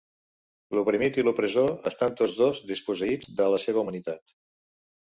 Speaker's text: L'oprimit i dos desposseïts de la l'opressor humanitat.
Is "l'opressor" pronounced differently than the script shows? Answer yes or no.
yes